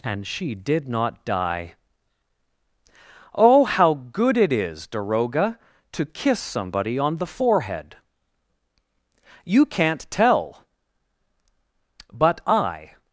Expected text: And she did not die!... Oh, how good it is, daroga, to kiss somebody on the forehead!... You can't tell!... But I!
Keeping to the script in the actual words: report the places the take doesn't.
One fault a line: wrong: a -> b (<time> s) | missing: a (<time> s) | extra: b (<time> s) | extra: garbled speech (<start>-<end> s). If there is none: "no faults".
no faults